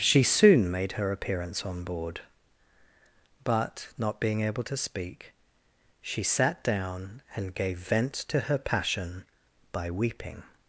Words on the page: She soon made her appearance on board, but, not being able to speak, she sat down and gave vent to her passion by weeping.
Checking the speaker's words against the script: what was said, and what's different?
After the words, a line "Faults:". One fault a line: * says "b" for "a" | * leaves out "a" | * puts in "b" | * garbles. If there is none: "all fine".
She soon made her appearance on board, but, not being able to speak, she sat down and gave vent to her passion by weeping.
Faults:
all fine